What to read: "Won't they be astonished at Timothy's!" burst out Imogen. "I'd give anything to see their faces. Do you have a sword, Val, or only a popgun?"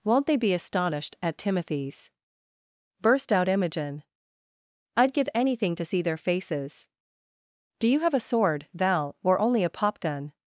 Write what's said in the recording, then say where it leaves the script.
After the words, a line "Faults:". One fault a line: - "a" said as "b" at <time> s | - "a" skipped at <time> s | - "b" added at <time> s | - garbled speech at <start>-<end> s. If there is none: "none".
"Won't they be astonished at Timothy's!" burst out Imogen. "I'd give anything to see their faces. Do you have a sword, Val, or only a popgun?"
Faults:
none